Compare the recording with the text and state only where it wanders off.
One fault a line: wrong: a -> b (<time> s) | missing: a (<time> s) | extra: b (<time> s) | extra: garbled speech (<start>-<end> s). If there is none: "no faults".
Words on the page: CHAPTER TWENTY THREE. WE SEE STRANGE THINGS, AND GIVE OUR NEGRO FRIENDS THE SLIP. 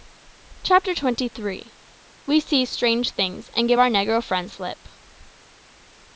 missing: THE (4.5 s)